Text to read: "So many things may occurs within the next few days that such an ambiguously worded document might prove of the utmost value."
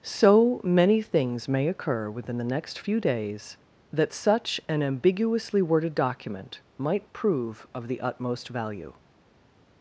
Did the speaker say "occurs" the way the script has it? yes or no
no